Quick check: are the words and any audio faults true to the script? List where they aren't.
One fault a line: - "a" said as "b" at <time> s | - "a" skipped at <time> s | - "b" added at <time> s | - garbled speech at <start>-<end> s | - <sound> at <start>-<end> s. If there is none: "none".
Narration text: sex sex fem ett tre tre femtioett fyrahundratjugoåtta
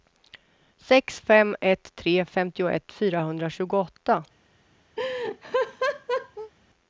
- "sex" skipped at 1.2 s
- "tre" skipped at 2.2 s
- laugh at 5.0-6.5 s